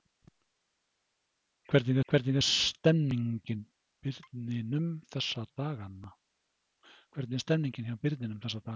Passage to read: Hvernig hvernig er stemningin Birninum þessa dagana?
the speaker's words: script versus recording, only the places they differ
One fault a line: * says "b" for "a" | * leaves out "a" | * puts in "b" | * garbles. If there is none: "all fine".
all fine